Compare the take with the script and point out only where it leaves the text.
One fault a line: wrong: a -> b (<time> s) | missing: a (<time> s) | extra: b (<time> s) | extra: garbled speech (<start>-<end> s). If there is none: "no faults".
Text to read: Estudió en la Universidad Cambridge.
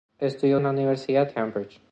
no faults